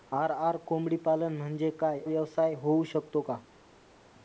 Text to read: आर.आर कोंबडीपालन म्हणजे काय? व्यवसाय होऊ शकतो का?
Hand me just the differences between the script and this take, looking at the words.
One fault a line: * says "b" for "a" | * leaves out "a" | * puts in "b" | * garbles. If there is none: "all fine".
all fine